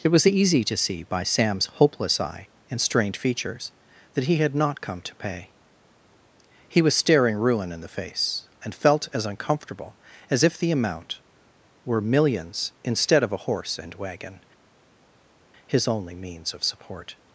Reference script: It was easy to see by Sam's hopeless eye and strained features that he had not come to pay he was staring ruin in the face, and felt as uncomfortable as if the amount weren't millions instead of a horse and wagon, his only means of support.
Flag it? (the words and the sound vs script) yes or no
yes